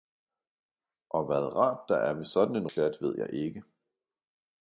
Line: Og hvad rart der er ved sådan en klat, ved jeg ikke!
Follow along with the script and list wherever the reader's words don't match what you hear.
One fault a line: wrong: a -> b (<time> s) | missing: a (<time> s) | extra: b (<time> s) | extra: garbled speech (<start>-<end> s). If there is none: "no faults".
no faults